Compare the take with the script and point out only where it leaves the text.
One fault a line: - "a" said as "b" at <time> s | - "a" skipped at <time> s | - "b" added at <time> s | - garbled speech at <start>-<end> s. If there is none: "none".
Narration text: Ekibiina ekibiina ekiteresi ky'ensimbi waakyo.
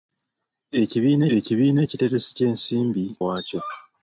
none